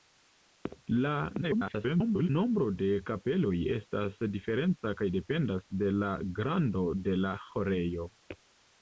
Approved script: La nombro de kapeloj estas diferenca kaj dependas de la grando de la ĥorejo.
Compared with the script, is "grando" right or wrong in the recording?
right